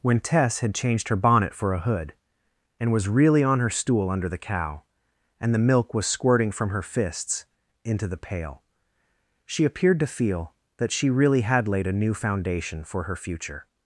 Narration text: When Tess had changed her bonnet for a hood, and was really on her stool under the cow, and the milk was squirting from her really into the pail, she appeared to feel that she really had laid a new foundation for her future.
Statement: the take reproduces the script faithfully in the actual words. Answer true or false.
false